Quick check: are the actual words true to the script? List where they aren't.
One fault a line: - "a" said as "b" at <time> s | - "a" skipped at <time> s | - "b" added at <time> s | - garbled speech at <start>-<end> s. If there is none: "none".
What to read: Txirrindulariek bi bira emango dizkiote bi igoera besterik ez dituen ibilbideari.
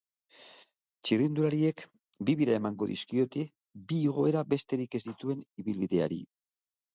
none